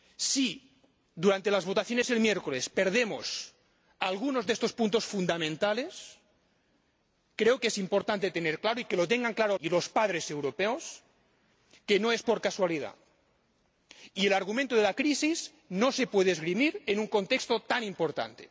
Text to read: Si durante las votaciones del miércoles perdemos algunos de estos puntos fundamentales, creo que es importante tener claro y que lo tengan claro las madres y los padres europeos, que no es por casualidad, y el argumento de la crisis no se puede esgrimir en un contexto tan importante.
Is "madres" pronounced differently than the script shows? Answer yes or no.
yes